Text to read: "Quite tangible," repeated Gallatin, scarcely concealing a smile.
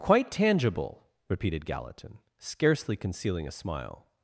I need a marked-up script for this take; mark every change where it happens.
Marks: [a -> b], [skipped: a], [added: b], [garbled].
"Quite tangible," repeated Gallatin, scarcely concealing a smile.